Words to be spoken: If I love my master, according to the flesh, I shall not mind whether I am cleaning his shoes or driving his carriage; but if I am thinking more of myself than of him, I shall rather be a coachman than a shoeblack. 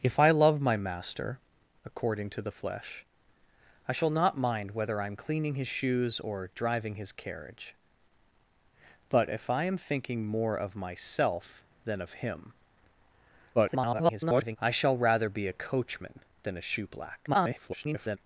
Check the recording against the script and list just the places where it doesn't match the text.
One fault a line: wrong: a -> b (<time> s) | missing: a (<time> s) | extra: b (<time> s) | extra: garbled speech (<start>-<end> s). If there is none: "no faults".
extra: garbled speech (13.5-14.6 s)
extra: garbled speech (17.3-18.2 s)